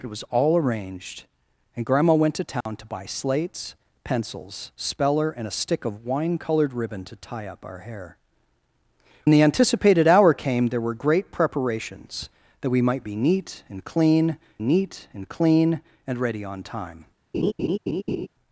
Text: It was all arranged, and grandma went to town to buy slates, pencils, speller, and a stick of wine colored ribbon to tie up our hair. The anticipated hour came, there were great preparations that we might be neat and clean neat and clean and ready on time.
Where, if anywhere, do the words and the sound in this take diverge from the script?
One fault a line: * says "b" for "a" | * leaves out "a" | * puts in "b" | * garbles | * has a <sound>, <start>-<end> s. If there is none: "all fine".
* has a dropout, 2.6-2.7 s
* has a laugh, 17.3-18.3 s